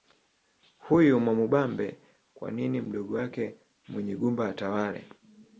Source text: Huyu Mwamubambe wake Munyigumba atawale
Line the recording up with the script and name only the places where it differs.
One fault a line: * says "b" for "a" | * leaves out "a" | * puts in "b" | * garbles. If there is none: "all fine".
* puts in "kwa nini mdogo"